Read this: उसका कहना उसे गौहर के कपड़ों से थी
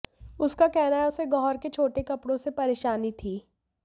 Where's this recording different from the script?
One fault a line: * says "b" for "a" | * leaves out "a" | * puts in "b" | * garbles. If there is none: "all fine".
* puts in "है"
* puts in "छोटे"
* puts in "परेशानी"